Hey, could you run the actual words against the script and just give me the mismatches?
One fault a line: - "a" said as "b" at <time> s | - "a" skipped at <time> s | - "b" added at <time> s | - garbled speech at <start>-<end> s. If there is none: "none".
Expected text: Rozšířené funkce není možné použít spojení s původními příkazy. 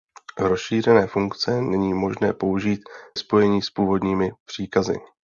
none